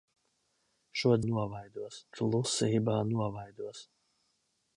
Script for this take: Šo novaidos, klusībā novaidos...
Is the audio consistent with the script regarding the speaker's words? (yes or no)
yes